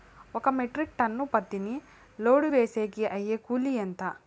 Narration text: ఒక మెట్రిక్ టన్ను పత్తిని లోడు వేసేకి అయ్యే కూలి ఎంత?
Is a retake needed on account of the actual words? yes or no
no